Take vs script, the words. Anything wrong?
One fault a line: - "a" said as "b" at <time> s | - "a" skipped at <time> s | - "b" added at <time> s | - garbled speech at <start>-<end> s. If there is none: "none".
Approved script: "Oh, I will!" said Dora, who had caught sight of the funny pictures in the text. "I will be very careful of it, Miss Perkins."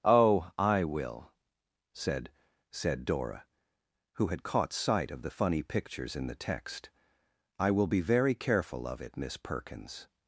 - "said" added at 2.7 s